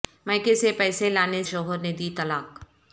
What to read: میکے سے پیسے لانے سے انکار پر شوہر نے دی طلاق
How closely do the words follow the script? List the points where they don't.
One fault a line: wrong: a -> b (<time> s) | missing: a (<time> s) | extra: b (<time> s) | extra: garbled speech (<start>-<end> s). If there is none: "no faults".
missing: سے انکار پر (1.4 s)